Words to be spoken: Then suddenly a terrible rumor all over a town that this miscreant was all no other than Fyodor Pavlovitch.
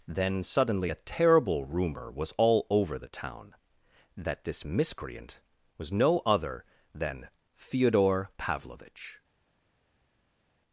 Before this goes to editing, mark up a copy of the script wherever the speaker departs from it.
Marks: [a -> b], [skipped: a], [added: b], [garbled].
Then suddenly a terrible rumor [added: was] all over [a -> the] town that this miscreant was [skipped: all] no other than Fyodor Pavlovitch.